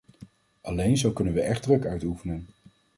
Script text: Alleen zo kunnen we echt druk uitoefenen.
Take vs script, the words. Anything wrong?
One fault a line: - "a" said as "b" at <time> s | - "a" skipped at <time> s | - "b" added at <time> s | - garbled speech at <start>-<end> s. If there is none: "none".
none